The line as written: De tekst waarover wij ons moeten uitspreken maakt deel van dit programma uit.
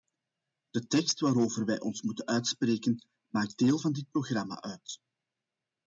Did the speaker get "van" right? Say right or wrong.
right